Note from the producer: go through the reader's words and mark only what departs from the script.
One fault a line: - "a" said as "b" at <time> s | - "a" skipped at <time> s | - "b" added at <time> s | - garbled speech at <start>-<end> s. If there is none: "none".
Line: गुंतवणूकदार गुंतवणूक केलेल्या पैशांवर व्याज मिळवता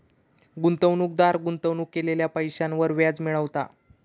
none